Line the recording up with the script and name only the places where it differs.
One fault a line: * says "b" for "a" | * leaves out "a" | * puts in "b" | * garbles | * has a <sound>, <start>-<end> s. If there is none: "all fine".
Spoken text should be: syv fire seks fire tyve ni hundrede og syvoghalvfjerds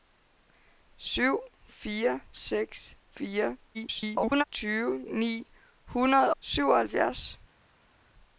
* garbles
* leaves out "og"